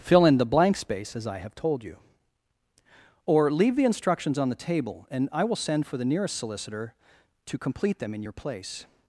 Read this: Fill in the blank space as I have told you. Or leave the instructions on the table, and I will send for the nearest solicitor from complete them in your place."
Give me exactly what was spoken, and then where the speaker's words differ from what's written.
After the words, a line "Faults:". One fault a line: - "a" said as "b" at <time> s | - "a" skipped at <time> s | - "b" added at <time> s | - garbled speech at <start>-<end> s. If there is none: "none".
Fill in the blank space as I have told you. Or leave the instructions on the table, and I will send for the nearest solicitor to complete them in your place."
Faults:
- "from" said as "to" at 7.5 s